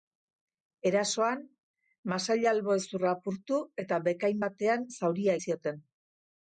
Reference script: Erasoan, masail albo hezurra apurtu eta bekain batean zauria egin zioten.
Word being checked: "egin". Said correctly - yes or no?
no